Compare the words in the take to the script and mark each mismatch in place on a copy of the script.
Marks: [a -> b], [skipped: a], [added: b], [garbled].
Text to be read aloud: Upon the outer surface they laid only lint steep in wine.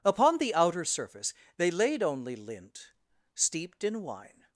Upon the outer surface they laid only lint [steep -> steeped] in wine.